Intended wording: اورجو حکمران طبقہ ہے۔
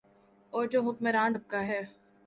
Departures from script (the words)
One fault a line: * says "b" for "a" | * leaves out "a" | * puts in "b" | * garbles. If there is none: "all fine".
all fine